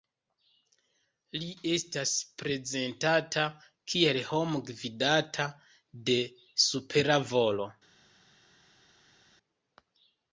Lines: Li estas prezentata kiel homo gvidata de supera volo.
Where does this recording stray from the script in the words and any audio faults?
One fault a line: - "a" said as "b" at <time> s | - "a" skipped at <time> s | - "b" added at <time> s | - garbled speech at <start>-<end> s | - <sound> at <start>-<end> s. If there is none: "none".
none